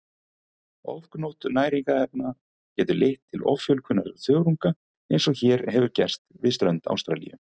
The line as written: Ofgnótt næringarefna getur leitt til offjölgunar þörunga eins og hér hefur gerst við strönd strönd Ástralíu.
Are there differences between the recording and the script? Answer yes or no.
yes